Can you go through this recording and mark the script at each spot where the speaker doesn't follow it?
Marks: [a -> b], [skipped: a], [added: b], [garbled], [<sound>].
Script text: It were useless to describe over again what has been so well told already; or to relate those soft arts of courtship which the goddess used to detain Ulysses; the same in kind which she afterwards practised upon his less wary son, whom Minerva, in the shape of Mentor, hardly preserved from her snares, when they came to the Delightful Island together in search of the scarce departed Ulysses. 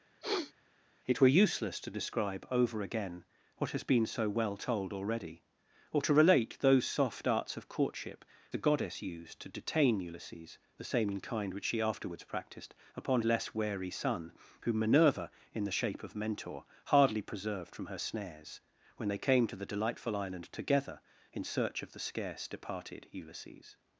[sniff] It were useless to describe over again what has been so well told already; or to relate those soft arts of courtship [skipped: which] the goddess used to detain Ulysses; the same in kind which she afterwards practised upon [skipped: his] less wary son, whom Minerva, in the shape of Mentor, hardly preserved from her snares, when they came to the Delightful Island together in search of the scarce departed Ulysses.